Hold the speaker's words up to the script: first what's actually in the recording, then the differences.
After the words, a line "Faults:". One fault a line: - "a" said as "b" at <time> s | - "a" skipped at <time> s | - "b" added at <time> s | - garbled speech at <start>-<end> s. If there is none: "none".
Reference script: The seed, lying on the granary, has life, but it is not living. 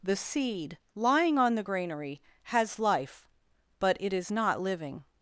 The seed, lying on the granary, has life, but it is not living.
Faults:
none